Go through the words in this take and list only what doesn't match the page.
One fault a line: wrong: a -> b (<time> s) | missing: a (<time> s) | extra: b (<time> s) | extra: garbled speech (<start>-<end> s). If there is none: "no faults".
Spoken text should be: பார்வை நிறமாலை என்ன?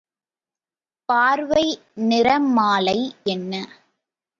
no faults